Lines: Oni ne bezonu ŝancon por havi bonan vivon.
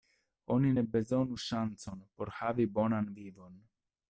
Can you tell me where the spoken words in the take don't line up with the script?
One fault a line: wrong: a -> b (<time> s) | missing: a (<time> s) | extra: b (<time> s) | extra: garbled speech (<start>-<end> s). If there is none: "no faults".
no faults